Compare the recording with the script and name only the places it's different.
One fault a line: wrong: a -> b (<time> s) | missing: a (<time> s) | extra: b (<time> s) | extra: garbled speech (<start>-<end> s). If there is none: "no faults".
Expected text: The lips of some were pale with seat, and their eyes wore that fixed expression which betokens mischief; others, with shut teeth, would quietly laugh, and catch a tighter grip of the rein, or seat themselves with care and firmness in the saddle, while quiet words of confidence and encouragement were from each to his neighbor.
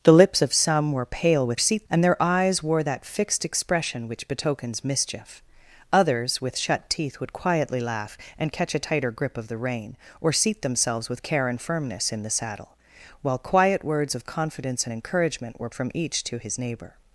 no faults